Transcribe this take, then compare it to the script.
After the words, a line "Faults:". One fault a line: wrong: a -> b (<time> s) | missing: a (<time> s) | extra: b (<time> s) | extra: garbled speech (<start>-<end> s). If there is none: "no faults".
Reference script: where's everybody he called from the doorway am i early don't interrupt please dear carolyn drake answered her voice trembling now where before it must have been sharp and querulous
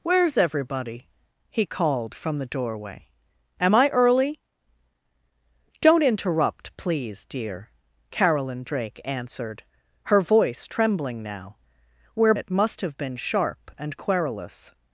where's everybody he called from the doorway am i early don't interrupt please dear carolyn drake answered her voice trembling now where it must have been sharp and querulous
Faults:
missing: before (12.3 s)